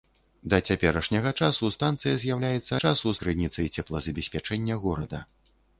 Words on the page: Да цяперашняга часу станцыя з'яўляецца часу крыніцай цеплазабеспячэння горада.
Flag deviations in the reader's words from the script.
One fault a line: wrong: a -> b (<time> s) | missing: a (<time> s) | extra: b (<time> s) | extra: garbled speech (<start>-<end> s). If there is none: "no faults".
no faults